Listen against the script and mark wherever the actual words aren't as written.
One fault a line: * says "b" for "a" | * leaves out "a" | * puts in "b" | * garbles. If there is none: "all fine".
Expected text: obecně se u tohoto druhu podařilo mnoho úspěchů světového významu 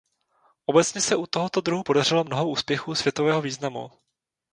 all fine